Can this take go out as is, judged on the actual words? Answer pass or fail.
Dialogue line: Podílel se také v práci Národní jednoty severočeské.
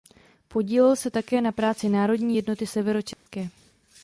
fail